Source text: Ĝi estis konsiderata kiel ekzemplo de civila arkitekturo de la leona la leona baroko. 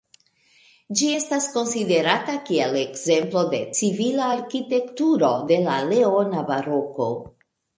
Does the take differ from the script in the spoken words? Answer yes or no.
yes